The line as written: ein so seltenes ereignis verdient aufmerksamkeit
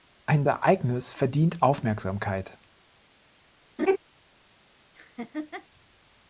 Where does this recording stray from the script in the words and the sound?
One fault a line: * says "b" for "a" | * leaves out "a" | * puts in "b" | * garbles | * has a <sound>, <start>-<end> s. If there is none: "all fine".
* leaves out "so seltenes"
* has a laugh, 3.8-4.0 s
* has a laugh, 4.9-5.7 s